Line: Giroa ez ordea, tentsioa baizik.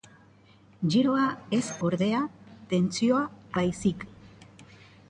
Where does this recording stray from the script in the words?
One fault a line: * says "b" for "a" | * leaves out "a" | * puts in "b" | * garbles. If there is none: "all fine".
all fine